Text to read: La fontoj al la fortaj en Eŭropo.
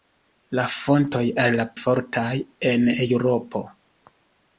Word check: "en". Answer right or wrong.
right